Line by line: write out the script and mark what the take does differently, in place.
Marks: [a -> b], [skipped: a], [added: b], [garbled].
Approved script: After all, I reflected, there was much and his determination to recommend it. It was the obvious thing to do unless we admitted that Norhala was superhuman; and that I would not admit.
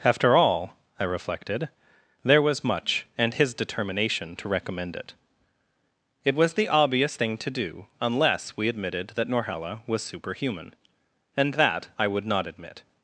After all, I reflected, there was much and his determination to recommend it. It was the obvious thing to do unless we admitted that Norhala was superhuman; and that I would not admit.